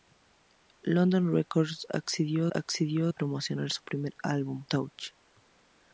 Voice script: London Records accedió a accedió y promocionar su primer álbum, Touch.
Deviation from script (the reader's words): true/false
false